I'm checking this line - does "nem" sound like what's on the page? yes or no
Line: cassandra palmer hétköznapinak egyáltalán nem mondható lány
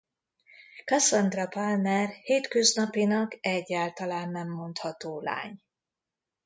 yes